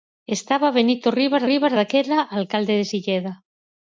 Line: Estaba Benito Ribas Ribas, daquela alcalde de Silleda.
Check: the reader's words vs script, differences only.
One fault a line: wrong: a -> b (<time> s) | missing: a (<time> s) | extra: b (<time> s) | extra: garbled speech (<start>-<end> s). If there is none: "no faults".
no faults